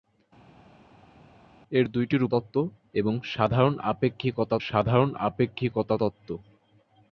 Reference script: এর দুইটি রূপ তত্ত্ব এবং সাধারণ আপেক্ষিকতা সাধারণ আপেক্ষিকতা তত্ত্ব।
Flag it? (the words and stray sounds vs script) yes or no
no